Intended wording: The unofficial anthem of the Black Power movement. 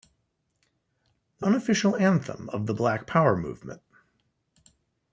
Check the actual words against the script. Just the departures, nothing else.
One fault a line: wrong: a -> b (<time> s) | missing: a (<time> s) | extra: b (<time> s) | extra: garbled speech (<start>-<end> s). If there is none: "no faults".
no faults